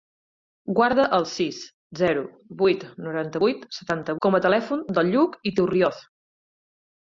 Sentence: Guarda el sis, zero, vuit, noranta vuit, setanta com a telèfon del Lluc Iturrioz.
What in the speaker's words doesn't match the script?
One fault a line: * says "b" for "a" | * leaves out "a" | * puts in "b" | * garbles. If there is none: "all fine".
all fine